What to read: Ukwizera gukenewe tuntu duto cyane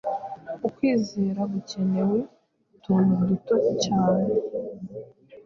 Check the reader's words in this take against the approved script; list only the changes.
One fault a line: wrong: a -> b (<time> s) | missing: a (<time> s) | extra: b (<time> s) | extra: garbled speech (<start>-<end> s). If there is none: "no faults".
no faults